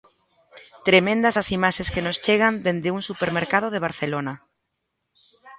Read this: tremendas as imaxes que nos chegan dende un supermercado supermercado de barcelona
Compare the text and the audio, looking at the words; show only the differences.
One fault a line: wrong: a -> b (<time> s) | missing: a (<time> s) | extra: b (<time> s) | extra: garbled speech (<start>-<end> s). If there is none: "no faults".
missing: supermercado (3.7 s)